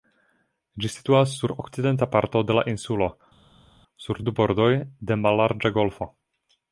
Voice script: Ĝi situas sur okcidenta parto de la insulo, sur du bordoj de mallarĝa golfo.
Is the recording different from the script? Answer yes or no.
no